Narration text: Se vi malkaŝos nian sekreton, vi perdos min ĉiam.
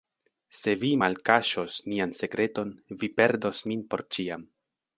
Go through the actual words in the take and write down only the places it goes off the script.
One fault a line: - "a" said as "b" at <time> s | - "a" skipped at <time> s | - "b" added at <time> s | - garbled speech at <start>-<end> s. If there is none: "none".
- "por" added at 3.9 s